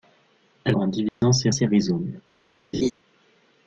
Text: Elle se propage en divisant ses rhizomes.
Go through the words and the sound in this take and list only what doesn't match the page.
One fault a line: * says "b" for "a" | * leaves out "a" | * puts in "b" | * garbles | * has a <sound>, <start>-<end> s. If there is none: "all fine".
* leaves out "se propage"
* has a dropout, 1.1-1.2 s
* puts in "ses"
* has a laugh, 2.7-2.9 s